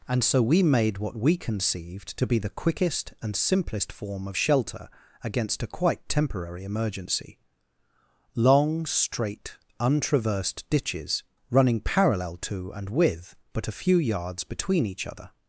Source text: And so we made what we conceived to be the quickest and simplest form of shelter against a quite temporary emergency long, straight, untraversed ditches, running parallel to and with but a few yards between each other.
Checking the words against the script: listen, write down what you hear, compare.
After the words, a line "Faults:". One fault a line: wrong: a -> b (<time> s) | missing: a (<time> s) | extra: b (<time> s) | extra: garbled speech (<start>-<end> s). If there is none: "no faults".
And so we made what we conceived to be the quickest and simplest form of shelter against a quite temporary emergency long, straight, untraversed ditches, running parallel to and with but a few yards between each other.
Faults:
no faults